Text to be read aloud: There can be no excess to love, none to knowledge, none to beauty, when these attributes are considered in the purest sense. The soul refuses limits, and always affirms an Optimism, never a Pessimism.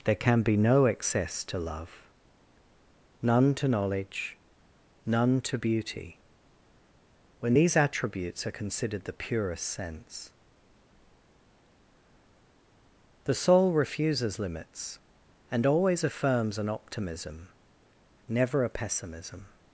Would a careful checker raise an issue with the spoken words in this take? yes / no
yes